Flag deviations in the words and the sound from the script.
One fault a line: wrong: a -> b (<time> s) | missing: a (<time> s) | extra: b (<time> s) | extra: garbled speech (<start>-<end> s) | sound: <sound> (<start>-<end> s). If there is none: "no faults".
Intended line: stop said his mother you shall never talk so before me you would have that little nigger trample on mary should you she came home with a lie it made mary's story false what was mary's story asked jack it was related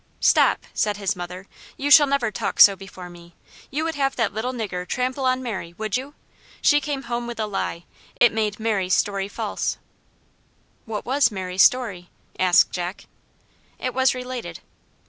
wrong: should -> would (5.8 s)
sound: dropout (8.2-8.2 s)